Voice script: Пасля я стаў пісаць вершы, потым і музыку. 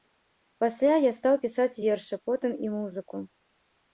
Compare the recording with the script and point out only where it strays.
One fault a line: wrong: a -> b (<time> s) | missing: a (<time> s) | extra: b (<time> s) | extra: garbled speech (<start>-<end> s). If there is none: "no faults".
no faults